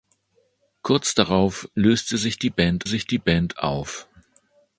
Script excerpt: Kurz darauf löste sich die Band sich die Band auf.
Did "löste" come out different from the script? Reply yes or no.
no